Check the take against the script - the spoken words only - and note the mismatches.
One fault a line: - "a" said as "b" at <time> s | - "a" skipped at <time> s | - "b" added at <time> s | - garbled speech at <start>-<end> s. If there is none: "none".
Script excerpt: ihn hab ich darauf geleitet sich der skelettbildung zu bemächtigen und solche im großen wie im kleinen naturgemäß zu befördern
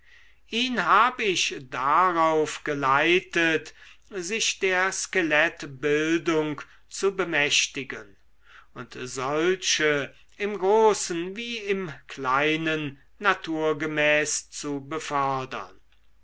none